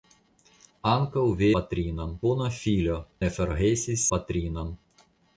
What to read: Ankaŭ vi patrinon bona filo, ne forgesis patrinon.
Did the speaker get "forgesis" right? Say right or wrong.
right